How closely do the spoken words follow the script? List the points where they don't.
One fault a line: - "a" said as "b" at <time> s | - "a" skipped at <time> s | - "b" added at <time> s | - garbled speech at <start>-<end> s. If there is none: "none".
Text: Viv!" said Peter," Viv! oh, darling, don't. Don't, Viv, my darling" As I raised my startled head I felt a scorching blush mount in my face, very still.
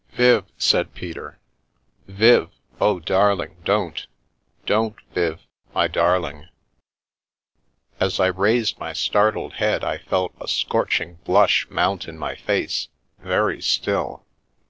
none